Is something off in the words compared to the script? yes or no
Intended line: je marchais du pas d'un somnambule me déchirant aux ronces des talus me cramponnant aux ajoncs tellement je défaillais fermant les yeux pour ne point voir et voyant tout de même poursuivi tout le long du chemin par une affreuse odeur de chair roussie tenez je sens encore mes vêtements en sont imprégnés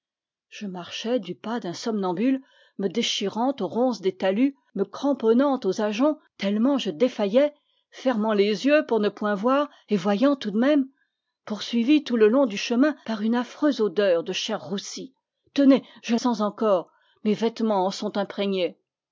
no